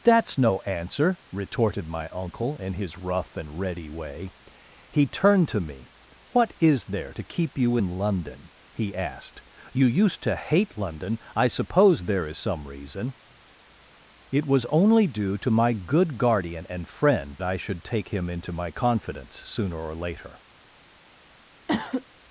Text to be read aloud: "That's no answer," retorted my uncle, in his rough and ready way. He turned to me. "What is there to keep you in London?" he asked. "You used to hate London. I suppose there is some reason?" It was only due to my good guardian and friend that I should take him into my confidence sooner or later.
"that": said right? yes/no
no